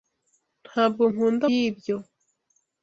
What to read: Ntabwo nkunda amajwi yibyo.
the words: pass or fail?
fail